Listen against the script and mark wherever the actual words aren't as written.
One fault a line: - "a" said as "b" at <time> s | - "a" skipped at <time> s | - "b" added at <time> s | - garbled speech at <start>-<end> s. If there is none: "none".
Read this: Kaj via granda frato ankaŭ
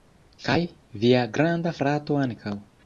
none